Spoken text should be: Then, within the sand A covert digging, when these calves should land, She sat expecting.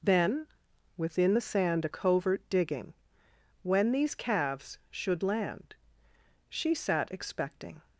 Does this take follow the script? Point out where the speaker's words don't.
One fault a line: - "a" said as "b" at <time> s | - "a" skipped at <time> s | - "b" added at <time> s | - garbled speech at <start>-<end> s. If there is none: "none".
none